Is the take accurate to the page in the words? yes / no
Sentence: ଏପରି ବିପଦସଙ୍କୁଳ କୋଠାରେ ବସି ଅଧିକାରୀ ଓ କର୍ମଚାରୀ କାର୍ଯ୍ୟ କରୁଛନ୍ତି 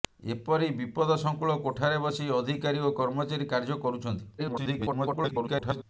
no